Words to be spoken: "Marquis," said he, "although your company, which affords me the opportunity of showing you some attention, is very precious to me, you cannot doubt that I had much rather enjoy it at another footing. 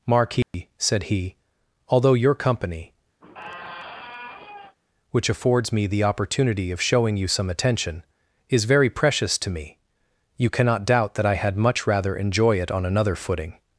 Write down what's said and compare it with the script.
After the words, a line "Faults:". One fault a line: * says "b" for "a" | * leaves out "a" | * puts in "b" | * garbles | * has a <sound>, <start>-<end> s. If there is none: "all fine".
"Marquis," said he, "although your company, which affords me the opportunity of showing you some attention, is very precious to me, you cannot doubt that I had much rather enjoy it on another footing.
Faults:
* has a dropout, 0.4-0.5 s
* has a squeak, 3.2-4.8 s
* says "on" for "at"